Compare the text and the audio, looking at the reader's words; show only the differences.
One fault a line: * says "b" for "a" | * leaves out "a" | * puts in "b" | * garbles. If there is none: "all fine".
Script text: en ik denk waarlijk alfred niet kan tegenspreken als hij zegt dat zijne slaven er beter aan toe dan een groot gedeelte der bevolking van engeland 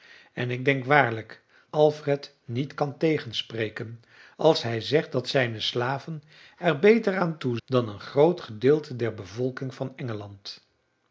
all fine